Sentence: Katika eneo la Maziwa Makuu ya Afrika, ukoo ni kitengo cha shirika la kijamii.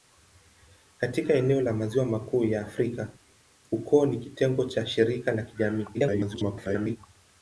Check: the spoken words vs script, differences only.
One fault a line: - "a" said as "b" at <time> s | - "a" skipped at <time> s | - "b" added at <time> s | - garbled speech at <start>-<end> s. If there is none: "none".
- garbled speech at 5.9-7.0 s